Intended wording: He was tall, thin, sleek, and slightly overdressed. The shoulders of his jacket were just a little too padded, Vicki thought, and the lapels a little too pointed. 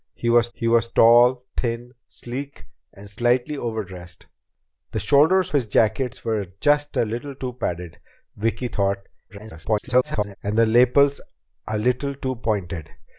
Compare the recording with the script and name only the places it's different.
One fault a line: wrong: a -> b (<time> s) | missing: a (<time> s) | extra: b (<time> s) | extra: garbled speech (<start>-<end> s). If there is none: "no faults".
extra: he was (0.5 s)
missing: of (5.5 s)
extra: garbled speech (9.3-10.4 s)